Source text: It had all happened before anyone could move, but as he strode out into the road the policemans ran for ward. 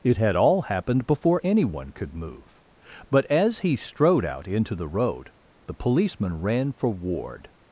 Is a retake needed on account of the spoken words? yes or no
yes